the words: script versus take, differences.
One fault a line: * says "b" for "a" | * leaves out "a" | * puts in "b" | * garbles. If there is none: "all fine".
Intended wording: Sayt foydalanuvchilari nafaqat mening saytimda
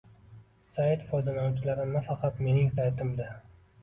all fine